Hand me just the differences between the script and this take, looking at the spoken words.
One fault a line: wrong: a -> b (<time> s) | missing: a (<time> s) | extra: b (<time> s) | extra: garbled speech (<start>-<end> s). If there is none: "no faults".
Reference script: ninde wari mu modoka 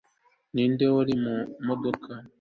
no faults